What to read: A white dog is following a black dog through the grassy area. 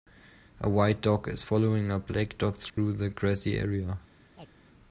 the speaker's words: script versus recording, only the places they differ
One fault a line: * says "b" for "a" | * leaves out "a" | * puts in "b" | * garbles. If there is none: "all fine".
all fine